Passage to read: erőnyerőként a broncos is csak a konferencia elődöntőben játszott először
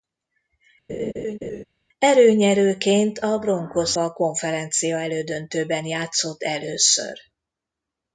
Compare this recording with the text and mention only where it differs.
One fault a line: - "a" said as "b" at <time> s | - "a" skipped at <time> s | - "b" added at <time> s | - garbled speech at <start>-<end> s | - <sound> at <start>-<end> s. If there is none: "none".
- laugh at 0.9-1.6 s
- "is csak" skipped at 4.0 s